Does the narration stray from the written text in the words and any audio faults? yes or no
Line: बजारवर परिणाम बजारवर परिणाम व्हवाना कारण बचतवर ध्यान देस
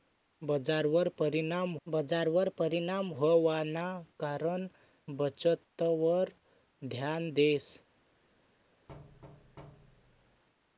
yes